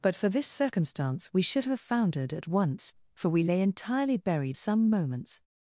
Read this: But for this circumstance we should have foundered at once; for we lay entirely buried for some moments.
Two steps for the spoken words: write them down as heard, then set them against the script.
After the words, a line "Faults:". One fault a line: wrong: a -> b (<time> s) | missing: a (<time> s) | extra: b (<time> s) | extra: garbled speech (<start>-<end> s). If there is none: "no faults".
But for this circumstance we should have foundered at once; for we lay entirely buried some moments.
Faults:
missing: for (4.6 s)